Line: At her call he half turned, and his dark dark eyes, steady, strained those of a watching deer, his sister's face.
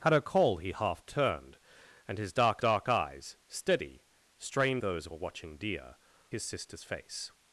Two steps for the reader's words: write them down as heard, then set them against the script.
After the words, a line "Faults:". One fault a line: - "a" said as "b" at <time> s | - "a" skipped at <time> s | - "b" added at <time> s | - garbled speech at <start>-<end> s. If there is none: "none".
At her call he half turned, and his dark dark eyes, steady, strained those of a watching deer, his sister's face.
Faults:
none